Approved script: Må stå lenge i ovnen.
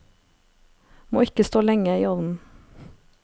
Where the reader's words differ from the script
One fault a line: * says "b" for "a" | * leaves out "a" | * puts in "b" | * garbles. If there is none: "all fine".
* puts in "ikke"